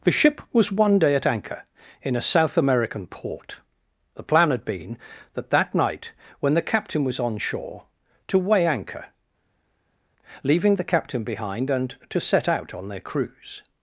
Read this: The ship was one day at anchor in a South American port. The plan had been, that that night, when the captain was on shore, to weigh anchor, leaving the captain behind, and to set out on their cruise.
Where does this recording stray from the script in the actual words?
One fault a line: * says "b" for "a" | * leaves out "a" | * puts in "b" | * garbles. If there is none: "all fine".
all fine